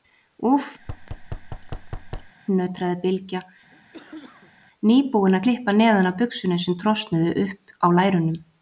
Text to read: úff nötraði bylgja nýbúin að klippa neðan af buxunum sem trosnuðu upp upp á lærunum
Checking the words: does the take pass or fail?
fail